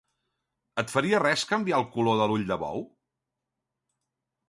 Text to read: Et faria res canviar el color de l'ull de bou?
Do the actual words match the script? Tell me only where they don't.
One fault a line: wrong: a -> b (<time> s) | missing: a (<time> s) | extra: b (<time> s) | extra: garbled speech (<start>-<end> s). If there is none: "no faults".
no faults